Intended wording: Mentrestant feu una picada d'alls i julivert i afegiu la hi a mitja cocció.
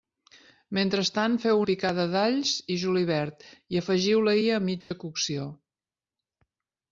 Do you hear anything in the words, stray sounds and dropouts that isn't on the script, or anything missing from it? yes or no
yes